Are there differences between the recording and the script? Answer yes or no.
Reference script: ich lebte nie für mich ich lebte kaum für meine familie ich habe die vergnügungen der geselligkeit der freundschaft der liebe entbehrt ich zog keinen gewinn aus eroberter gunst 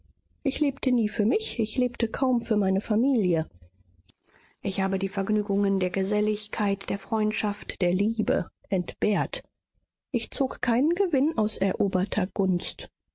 no